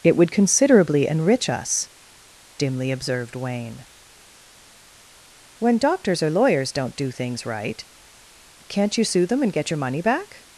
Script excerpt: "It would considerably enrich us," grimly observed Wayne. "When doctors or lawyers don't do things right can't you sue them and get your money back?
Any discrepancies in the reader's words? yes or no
yes